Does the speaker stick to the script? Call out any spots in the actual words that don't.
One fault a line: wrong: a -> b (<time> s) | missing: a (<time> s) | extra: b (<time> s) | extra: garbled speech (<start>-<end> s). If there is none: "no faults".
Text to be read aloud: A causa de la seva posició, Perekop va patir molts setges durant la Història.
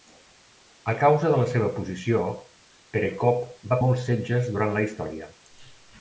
missing: patir (3.8 s)